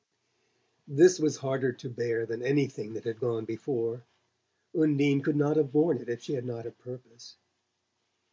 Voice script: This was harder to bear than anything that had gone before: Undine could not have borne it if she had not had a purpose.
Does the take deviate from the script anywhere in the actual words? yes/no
yes